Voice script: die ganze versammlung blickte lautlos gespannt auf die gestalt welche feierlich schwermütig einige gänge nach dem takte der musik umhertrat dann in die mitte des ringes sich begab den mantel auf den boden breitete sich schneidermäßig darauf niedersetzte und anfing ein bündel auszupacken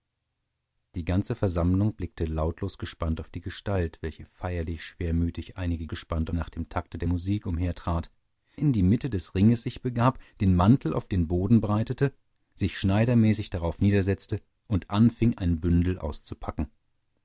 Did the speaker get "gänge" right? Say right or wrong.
wrong